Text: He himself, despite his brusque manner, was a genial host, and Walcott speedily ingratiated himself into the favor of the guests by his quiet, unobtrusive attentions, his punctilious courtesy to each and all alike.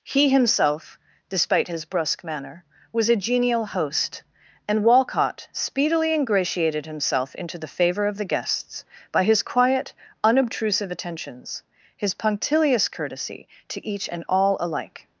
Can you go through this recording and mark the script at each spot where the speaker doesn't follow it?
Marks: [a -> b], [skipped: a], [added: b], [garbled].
He himself, despite his brusque manner, was a genial host, and Walcott speedily ingratiated himself into the favor of the guests by his quiet, unobtrusive attentions, his punctilious courtesy to each and all alike.